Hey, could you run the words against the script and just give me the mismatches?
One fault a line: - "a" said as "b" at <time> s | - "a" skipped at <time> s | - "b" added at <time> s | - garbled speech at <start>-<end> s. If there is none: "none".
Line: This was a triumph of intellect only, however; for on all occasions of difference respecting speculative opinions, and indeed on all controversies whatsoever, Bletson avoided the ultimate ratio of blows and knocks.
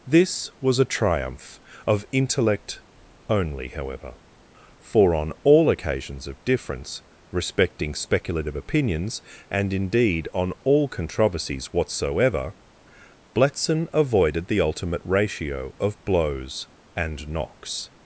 none